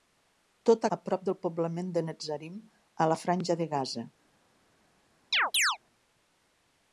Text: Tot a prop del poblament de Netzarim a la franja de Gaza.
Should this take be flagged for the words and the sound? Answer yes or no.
yes